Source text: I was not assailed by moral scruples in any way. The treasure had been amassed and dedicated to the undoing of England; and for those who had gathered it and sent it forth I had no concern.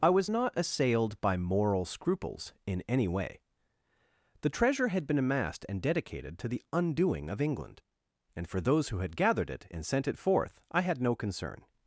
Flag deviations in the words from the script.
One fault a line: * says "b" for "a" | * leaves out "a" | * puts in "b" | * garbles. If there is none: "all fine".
all fine